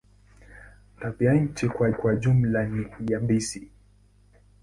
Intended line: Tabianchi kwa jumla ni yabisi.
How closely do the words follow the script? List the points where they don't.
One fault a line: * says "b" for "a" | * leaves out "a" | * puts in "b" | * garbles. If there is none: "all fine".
* puts in "kwa"